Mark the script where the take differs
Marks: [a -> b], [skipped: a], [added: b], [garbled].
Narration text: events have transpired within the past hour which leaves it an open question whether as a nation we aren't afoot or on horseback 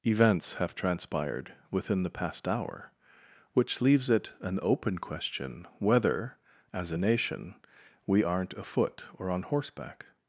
events have transpired within the past hour which leaves it an open question whether as a nation we aren't afoot or on horseback